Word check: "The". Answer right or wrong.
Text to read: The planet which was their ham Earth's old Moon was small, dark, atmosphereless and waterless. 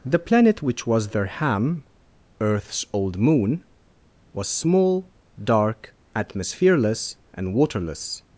right